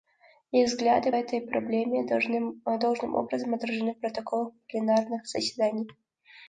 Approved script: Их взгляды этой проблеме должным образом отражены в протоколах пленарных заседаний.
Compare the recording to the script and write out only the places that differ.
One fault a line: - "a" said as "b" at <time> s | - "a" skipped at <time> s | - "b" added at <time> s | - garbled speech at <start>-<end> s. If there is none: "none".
none